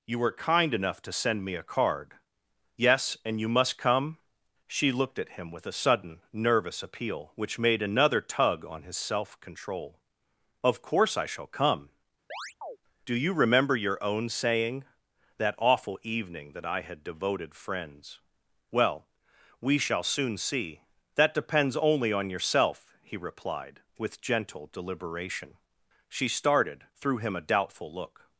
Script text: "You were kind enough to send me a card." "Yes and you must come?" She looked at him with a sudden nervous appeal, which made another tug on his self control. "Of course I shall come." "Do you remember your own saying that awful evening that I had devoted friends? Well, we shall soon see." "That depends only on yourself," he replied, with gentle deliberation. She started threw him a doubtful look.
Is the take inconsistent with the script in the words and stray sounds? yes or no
yes